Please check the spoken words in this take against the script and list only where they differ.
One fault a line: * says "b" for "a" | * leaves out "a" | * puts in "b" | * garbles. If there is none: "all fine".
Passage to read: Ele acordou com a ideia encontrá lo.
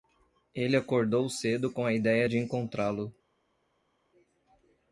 * puts in "cedo"
* puts in "de"